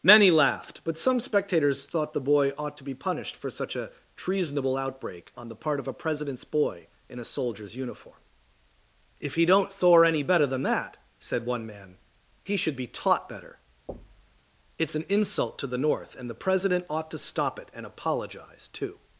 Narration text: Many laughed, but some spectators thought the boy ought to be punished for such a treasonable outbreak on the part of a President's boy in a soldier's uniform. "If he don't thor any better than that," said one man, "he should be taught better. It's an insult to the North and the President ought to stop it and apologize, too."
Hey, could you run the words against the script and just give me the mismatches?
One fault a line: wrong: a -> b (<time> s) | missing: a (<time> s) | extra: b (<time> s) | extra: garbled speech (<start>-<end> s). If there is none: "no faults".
no faults